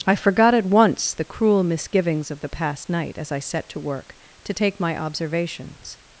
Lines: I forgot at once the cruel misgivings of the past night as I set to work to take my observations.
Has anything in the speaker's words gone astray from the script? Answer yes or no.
no